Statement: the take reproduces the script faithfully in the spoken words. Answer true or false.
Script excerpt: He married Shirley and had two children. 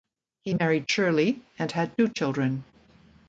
true